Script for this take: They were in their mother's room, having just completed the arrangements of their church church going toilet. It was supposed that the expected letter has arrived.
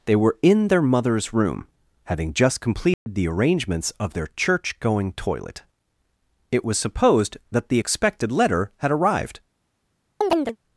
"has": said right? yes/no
no